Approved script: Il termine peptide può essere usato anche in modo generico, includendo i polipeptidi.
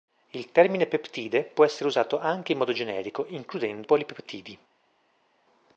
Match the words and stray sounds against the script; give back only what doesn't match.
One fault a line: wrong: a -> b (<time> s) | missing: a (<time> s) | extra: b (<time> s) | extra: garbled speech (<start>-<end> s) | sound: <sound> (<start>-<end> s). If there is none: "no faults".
missing: i (3.9 s)